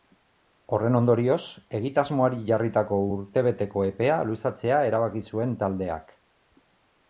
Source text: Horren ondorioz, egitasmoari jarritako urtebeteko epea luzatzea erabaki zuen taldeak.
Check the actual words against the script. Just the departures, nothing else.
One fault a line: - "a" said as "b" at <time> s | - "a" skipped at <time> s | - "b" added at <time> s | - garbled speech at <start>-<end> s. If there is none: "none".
none